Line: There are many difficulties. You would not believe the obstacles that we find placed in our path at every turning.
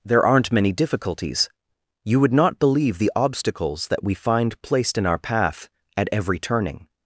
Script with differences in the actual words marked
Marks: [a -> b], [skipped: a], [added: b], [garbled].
There [are -> aren't] many difficulties. You would not believe the obstacles that we find placed in our path at every turning.